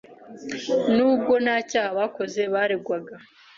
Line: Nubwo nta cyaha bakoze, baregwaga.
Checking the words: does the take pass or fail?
pass